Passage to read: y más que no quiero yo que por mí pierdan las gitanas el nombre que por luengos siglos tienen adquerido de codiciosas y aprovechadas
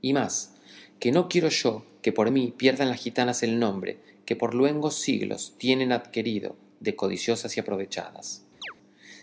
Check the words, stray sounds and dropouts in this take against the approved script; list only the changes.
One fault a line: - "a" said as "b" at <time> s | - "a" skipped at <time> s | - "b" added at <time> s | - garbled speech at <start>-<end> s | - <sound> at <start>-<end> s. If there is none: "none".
- chirp at 8.6-8.7 s